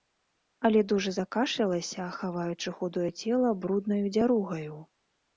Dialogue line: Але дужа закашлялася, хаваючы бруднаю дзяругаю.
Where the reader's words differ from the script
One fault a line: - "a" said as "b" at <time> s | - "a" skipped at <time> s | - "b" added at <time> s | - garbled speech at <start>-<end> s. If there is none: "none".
- "худое цела" added at 2.8 s